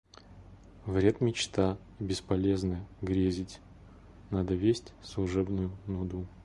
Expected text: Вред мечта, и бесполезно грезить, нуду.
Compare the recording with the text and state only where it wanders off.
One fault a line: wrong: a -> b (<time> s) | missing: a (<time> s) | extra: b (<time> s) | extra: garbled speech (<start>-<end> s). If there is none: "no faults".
extra: надо весть служебную (4.3 s)